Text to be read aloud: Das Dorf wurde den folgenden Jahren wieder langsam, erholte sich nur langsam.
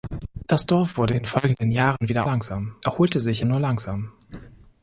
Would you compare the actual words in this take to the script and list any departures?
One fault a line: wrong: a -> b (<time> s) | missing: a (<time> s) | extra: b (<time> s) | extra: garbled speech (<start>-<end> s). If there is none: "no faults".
no faults